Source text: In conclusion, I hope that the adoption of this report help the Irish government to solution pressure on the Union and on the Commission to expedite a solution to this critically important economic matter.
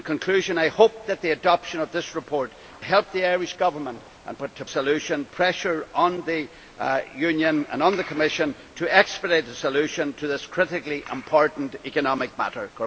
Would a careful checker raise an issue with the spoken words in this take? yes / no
no